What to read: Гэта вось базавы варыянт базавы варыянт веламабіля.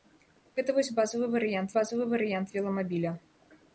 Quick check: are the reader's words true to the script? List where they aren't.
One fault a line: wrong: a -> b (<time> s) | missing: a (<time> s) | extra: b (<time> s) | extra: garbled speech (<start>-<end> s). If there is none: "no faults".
no faults